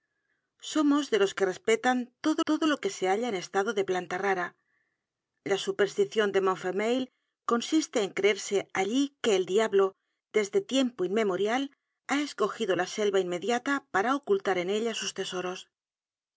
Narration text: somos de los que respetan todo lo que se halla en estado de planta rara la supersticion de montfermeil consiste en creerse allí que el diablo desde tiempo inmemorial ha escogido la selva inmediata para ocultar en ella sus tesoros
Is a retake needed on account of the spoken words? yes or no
yes